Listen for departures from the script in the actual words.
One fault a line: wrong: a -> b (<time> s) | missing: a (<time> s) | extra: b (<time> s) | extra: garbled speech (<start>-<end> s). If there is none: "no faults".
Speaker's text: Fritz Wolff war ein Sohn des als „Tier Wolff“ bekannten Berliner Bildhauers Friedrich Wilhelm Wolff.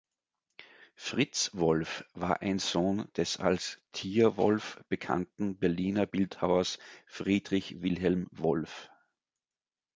no faults